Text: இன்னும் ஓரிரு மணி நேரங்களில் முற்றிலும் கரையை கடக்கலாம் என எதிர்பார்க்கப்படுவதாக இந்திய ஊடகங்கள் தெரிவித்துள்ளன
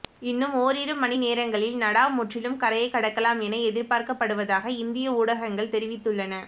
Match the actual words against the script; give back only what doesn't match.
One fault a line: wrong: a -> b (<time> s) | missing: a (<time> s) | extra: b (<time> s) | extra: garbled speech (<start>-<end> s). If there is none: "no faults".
extra: நடா (1.8 s)